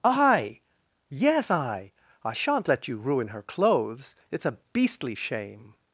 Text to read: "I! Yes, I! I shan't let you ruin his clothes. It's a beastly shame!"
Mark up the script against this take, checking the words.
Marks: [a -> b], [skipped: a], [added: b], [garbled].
"I! Yes, I! I shan't let you ruin [his -> her] clothes. It's a beastly shame!"